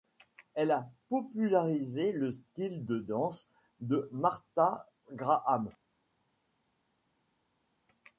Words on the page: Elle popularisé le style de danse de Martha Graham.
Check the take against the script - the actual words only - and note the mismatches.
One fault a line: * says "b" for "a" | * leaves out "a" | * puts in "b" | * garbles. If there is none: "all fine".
* puts in "a"